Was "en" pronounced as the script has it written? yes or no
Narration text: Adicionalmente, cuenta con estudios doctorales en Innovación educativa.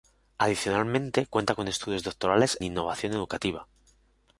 no